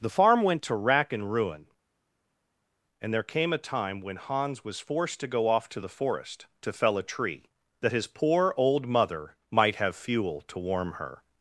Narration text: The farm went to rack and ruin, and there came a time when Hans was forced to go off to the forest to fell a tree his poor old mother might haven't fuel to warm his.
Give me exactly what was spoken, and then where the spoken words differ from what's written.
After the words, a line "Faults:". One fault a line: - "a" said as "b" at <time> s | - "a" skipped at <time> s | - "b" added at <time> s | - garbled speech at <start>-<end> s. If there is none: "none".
The farm went to rack and ruin, and there came a time when Hans was forced to go off to the forest to fell a tree that his poor old mother might have fuel to warm her.
Faults:
- "that" added at 7.8 s
- "haven't" said as "have" at 9.8 s
- "his" said as "her" at 10.9 s